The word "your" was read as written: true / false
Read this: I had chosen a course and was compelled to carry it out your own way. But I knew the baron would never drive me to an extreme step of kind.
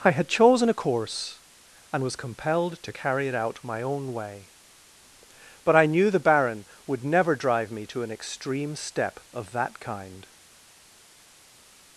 false